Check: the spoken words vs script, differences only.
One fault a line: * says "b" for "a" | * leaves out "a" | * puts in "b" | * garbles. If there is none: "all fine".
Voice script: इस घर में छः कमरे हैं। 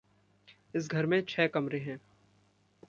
all fine